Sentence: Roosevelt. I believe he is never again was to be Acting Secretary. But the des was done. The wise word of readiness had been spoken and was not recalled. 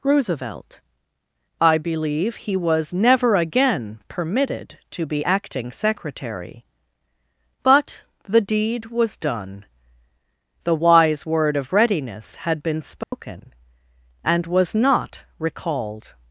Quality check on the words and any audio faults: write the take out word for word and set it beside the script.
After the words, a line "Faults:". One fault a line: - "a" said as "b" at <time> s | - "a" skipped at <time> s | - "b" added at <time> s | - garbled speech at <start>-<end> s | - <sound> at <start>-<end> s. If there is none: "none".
Roosevelt. I believe he was never again permitted to be Acting Secretary. But the deed was done. The wise word of readiness had been spoken and was not recalled.
Faults:
- "is" said as "was" at 2.5 s
- "was" said as "permitted" at 4.1 s
- "des" said as "deed" at 8.4 s
- dropout at 13.0-13.1 s